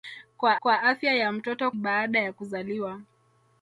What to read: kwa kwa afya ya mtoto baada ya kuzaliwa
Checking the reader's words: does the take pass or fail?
pass